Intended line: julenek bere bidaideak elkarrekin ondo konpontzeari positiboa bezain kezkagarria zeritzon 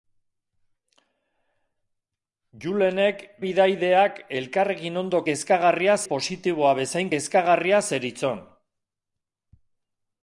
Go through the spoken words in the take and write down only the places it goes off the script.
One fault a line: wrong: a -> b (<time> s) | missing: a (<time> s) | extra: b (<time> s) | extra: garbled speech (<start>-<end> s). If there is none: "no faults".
missing: bere (3.2 s)
wrong: konpontzeari -> kezkagarria (5.3 s)